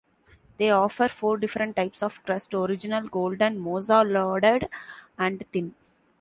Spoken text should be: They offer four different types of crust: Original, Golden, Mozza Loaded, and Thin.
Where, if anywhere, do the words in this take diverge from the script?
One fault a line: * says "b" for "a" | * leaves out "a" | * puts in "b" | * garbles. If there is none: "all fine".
all fine